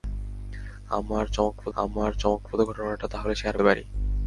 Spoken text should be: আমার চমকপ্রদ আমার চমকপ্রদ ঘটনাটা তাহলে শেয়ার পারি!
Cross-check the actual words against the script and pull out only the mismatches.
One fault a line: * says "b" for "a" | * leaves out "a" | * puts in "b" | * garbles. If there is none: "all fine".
all fine